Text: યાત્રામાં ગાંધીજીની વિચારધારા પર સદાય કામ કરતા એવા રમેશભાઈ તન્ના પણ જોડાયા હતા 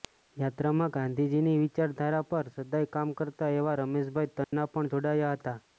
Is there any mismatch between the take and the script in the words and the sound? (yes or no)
yes